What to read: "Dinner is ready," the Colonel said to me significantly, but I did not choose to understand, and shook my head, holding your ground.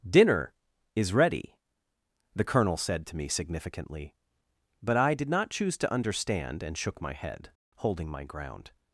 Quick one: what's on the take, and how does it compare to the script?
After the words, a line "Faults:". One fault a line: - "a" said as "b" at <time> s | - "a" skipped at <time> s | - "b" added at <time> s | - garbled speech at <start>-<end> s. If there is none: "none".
"Dinner is ready," the Colonel said to me significantly, but I did not choose to understand, and shook my head, holding my ground.
Faults:
- "your" said as "my" at 8.1 s